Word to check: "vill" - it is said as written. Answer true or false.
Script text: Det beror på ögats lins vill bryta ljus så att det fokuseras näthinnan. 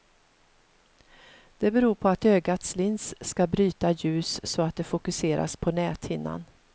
false